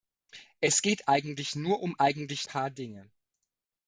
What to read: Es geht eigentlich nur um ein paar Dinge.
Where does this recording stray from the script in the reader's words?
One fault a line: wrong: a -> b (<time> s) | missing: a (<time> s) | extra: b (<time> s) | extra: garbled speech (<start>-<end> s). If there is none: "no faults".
wrong: ein -> eigentlich (2.0 s)